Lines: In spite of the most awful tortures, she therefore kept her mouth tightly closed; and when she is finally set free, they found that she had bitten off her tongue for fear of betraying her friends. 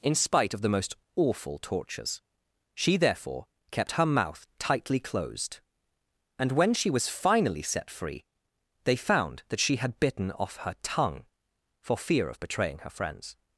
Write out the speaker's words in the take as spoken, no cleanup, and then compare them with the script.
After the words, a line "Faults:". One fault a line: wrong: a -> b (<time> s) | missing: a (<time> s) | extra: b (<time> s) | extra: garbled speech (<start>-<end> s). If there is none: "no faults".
In spite of the most awful tortures, she therefore kept her mouth tightly closed; and when she was finally set free, they found that she had bitten off her tongue for fear of betraying her friends.
Faults:
wrong: is -> was (6.9 s)